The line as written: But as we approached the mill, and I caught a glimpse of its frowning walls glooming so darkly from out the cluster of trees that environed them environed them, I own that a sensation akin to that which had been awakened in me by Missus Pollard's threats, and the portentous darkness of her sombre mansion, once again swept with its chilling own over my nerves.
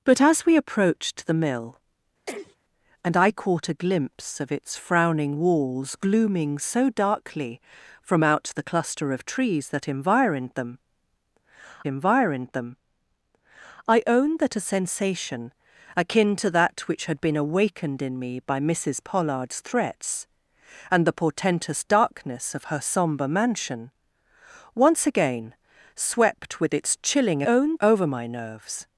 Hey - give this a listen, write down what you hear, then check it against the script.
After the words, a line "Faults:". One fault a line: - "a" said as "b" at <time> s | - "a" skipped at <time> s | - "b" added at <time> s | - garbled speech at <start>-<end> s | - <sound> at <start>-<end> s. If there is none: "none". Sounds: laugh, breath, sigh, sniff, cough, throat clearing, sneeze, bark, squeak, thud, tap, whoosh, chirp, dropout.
But as we approached the mill, and I caught a glimpse of its frowning walls glooming so darkly from out the cluster of trees that environed them environed them, I own that a sensation akin to that which had been awakened in me by Missus Pollard's threats, and the portentous darkness of her sombre mansion, once again swept with its chilling own over my nerves.
Faults:
- sneeze at 2.3-2.6 s